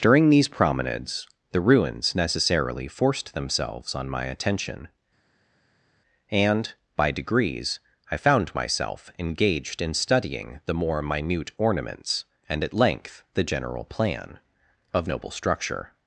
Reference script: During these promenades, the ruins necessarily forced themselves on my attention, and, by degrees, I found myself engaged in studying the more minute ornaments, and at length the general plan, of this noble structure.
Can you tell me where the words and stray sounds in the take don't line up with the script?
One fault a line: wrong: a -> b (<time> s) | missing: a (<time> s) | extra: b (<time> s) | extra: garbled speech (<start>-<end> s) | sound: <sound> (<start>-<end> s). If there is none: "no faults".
missing: this (15.1 s)